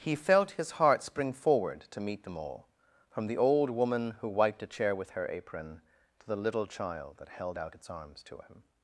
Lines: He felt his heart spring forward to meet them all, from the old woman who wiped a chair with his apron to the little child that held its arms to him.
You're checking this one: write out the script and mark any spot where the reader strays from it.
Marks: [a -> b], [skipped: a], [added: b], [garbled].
He felt his heart spring forward to meet them all, from the old woman who wiped a chair with [his -> her] apron to the little child that held [added: out] its arms to him.